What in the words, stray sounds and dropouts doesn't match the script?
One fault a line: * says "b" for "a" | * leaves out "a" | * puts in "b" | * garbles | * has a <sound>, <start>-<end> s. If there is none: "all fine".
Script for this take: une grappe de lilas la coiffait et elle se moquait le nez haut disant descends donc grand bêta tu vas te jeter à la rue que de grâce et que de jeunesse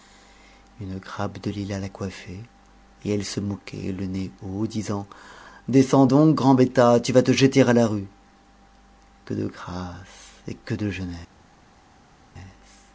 all fine